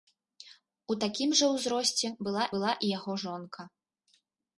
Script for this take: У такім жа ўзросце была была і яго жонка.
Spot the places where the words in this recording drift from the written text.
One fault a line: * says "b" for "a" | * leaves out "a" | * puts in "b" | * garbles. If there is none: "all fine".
all fine